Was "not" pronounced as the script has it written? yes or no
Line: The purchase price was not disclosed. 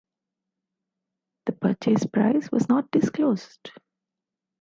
yes